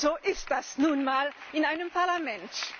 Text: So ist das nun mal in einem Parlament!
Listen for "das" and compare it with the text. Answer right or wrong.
right